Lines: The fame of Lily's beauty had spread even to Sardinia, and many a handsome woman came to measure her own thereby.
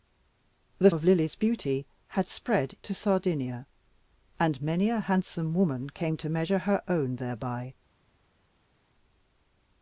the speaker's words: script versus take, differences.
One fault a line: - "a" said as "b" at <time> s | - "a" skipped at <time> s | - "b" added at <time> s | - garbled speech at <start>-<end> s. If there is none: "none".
- "fame" skipped at 0.9 s
- "even" skipped at 2.8 s